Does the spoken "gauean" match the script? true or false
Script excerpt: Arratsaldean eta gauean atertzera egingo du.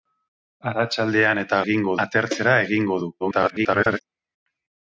false